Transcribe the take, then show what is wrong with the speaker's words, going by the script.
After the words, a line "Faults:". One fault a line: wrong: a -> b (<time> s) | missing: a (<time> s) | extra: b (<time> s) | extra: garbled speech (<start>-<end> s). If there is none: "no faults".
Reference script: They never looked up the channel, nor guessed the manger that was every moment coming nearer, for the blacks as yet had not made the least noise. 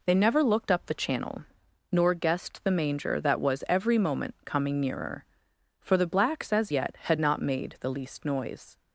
They never looked up the channel, nor guessed the manger that was every moment coming nearer, for the blacks as yet had not made the least noise.
Faults:
no faults